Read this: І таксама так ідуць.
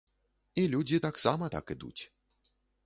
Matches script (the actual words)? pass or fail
fail